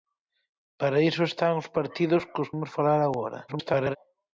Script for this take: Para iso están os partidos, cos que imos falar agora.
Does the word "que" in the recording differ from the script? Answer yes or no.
yes